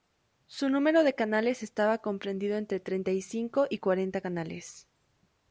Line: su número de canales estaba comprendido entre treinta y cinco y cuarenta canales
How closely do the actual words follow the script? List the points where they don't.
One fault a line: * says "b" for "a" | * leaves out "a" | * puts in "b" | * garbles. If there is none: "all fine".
all fine